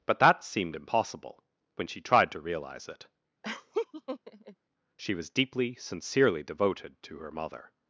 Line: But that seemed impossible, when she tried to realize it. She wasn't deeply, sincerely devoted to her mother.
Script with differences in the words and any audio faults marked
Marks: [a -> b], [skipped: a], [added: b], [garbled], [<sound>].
But that seemed impossible, when she tried to realize it. [laugh] She [wasn't -> was] deeply, sincerely devoted to her mother.